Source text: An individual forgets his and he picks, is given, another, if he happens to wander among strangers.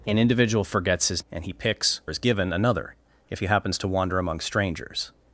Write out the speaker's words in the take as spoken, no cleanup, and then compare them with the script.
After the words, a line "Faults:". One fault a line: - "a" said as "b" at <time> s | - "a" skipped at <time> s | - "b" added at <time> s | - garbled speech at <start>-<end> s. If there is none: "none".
An individual forgets his and he picks, is given, another, if he happens to wander among strangers.
Faults:
none